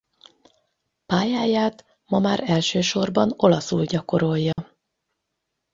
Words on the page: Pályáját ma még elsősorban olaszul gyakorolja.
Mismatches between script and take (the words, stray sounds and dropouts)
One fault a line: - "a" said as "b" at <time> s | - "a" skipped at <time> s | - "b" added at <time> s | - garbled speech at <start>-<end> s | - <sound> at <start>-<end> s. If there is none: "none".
- "még" said as "már" at 2.2 s
- dropout at 4.5-4.6 s